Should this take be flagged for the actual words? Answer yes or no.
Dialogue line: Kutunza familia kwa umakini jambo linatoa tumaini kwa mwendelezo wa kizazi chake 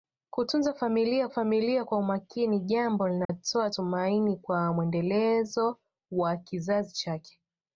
yes